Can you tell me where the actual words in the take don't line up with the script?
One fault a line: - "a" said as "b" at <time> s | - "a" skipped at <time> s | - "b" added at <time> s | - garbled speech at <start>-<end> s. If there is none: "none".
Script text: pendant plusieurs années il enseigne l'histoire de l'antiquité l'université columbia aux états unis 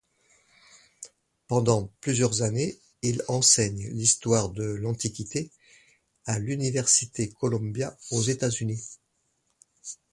- "à" added at 6.3 s